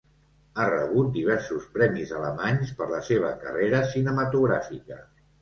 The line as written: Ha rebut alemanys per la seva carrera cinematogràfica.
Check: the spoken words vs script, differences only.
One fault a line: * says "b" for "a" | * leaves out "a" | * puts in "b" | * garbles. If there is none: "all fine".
* puts in "diversos premis"